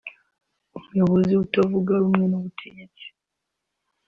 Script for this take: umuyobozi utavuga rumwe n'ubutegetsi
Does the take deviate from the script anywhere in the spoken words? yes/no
no